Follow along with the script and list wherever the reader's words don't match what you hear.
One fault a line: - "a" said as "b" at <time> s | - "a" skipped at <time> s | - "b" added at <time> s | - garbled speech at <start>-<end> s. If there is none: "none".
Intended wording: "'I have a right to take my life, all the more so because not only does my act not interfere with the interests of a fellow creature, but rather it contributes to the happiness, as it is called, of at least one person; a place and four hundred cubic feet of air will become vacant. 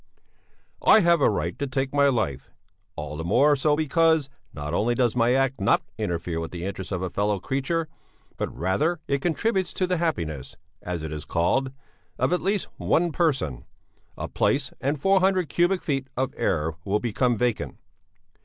none